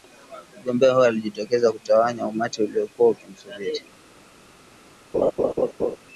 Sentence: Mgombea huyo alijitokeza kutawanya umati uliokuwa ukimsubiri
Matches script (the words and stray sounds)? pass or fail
fail